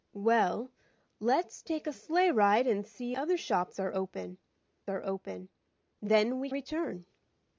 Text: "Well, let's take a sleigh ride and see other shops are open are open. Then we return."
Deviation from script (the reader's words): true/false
false